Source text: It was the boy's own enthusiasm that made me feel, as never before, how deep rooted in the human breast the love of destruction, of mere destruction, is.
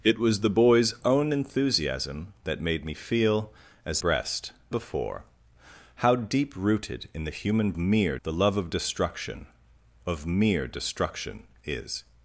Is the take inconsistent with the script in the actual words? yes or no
yes